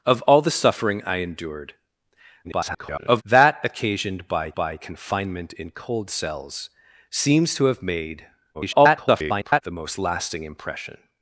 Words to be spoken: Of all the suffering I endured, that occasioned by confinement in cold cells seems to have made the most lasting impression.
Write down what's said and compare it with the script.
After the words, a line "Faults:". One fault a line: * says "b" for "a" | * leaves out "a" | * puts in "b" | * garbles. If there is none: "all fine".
Of all the suffering I endured, [garbled] that occasioned by by confinement in cold cells seems to have made [garbled] the most lasting impression.
Faults:
* garbles
* puts in "by"
* garbles